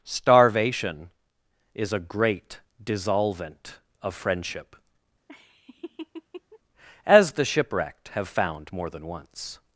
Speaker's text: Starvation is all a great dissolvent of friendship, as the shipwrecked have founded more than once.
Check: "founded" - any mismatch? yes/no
yes